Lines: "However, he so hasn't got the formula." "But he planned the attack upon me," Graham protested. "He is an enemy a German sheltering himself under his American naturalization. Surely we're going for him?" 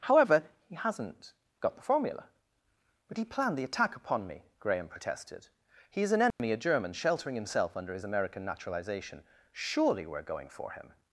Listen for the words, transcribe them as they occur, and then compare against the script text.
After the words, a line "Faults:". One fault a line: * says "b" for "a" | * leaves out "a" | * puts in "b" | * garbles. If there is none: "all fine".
"However, he hasn't got the formula." "But he planned the attack upon me," Graham protested. "He is an enemy a German sheltering himself under his American naturalization. Surely we're going for him?"
Faults:
* leaves out "so"